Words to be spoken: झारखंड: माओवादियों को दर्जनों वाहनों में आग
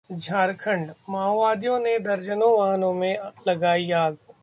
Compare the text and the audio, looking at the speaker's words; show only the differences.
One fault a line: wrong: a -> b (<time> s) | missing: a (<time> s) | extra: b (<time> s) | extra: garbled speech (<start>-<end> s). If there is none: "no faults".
wrong: को -> ने (1.8 s)
extra: लगाई (3.5 s)